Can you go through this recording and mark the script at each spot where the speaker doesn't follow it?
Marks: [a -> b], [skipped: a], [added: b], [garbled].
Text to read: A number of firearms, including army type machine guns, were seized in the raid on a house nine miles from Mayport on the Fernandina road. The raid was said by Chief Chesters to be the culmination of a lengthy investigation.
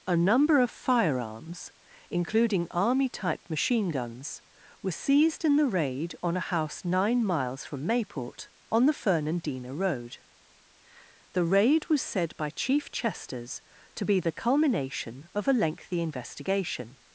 A number of firearms, including army type machine guns, were seized in the raid on a house nine miles from Mayport on the Fernandina road. The raid was said by Chief Chesters to be the culmination of a lengthy investigation.